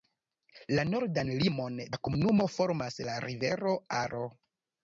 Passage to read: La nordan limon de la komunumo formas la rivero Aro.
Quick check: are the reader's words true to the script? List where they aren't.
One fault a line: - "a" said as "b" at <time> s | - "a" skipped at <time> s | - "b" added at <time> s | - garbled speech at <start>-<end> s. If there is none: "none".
- "de" skipped at 1.8 s